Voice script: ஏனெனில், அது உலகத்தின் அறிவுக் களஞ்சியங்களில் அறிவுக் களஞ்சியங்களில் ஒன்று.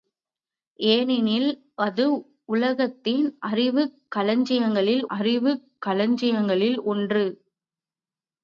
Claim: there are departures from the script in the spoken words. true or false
false